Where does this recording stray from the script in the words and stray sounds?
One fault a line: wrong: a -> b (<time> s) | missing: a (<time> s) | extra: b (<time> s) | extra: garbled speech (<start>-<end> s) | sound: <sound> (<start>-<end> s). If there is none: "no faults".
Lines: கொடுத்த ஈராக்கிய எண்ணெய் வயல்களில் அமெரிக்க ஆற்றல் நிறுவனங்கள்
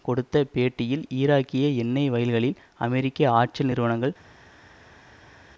extra: பேட்டியில் (0.5 s)